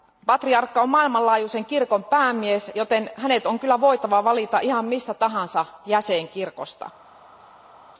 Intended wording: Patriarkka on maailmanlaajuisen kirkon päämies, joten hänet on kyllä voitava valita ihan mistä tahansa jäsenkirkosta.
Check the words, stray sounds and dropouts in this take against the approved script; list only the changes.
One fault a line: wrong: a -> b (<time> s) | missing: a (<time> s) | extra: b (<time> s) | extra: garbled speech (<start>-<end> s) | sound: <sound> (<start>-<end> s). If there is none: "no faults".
no faults